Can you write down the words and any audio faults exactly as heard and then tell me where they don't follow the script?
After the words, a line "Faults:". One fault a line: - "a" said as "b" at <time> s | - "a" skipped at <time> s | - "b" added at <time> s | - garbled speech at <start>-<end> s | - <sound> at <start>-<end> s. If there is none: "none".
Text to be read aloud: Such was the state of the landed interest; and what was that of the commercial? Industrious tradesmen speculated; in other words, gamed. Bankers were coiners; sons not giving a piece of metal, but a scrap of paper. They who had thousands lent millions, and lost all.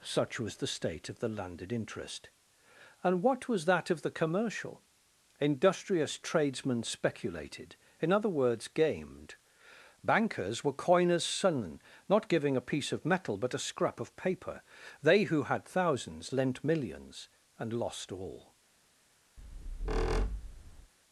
Such was the state of the landed interest; and what was that of the commercial? Industrious tradesmen speculated; in other words, gamed. Bankers were coiners; sons not giving a piece of metal, but a scrap of paper. They who had thousands lent millions, and lost all.
Faults:
- squeak at 19.4-20.9 s